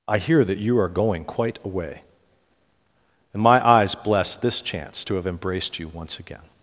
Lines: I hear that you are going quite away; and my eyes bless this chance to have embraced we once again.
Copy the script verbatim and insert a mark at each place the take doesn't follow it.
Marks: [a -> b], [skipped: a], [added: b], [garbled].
I hear that you are going quite away; and my eyes bless this chance to have embraced [we -> you] once again.